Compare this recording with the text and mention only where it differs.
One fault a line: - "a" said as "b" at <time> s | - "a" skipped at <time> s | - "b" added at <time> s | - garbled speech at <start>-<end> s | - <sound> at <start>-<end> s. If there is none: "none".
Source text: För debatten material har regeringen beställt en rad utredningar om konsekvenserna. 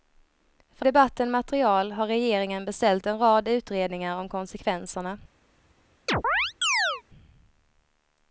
- chirp at 6.1-7.0 s